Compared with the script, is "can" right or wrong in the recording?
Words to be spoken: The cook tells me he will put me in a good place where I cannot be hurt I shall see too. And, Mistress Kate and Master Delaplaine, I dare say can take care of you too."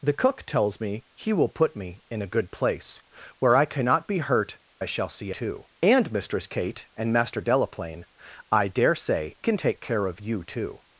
right